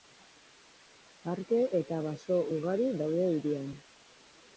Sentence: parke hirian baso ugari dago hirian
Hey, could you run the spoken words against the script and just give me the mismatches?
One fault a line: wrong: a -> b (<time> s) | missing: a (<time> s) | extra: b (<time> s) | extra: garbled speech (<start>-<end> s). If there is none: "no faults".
wrong: hirian -> eta (1.8 s)
wrong: dago -> daude (3.0 s)